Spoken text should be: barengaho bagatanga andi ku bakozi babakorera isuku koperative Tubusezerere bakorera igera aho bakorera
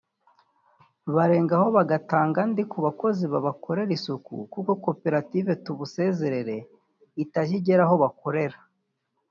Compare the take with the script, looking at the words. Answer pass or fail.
fail